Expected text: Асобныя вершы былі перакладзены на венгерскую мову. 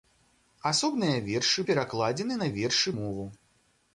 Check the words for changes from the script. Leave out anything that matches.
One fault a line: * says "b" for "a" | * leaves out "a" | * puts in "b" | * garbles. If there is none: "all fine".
* leaves out "былі"
* says "вершы" for "венгерскую"